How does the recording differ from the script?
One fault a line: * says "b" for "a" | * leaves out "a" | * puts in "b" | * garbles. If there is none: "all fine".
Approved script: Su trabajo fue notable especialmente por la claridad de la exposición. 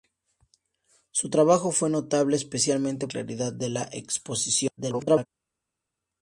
* leaves out "por la"
* garbles